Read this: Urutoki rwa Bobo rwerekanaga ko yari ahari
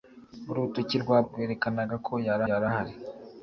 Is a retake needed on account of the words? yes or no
yes